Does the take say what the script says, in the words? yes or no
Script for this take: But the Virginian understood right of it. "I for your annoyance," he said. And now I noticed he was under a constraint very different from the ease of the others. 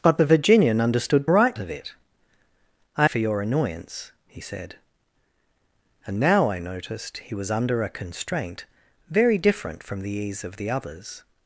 yes